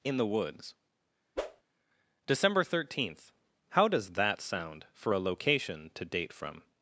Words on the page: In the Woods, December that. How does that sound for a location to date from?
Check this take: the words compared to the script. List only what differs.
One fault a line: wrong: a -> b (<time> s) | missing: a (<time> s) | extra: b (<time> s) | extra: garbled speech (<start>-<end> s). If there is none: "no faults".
wrong: that -> thirteenth (2.6 s)